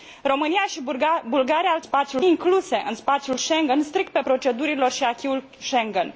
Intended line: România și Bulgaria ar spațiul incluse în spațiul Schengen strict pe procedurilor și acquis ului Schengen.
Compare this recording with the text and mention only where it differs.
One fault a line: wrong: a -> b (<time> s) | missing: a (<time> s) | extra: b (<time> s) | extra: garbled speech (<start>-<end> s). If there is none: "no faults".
no faults